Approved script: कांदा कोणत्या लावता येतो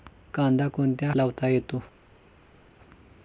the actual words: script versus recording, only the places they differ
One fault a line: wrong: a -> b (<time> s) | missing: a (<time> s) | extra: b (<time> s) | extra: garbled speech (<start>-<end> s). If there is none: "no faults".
no faults